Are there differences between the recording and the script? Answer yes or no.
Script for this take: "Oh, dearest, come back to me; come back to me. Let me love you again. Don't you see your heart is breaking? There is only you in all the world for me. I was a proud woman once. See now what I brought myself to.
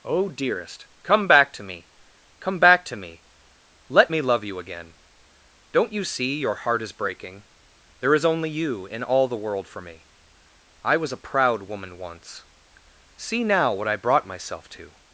no